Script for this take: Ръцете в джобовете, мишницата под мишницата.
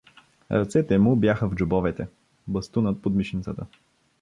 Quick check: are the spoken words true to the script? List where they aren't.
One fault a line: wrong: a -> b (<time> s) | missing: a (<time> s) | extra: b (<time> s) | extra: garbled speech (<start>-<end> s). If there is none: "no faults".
extra: му бяха (1.0 s)
wrong: мишницата -> бастунът (2.5 s)